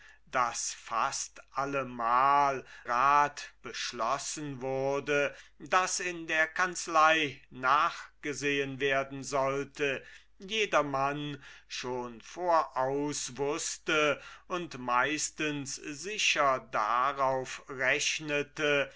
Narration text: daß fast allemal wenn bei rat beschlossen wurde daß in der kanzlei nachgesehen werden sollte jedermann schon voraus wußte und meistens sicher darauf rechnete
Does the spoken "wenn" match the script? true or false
false